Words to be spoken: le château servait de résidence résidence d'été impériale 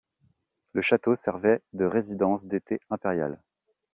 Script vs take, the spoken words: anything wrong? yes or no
yes